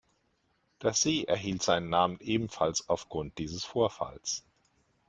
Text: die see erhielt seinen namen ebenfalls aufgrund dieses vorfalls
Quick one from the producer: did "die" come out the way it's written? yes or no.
no